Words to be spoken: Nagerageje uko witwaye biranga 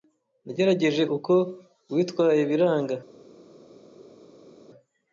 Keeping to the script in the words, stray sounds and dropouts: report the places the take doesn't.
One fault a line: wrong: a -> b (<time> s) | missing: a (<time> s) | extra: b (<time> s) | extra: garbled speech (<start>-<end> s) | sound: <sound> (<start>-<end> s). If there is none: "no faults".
no faults